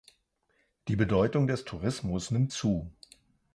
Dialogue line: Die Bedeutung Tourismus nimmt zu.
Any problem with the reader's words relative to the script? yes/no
yes